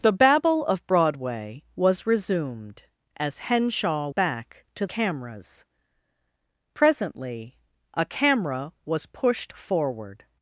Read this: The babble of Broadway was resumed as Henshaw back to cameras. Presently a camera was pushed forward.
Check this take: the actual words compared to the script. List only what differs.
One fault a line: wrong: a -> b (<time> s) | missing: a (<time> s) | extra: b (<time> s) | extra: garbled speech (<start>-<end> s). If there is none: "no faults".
no faults